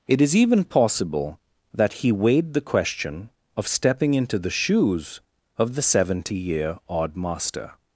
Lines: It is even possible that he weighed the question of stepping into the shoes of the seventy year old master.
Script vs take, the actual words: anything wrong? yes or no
yes